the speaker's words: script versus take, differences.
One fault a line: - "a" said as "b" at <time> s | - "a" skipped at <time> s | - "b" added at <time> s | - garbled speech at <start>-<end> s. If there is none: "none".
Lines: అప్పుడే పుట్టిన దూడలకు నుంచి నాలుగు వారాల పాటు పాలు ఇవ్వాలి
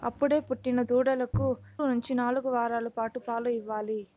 none